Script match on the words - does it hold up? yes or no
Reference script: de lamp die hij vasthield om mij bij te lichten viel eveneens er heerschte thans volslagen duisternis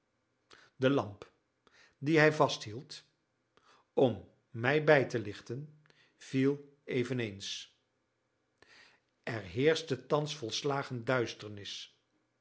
yes